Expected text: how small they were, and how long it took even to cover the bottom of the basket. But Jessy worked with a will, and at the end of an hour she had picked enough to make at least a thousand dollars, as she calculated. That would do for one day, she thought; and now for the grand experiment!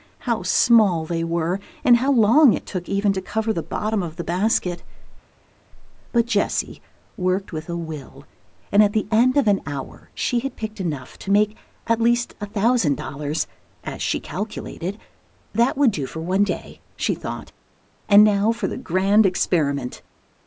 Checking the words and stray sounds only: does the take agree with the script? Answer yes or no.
yes